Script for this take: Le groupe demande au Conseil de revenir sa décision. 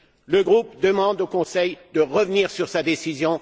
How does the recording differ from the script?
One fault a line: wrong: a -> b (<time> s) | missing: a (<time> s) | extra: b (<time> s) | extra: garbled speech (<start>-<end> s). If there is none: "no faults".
extra: sur (2.5 s)